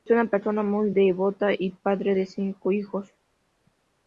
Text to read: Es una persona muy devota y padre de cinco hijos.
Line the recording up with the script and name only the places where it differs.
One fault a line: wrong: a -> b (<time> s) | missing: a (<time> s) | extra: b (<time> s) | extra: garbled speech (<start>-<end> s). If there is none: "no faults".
no faults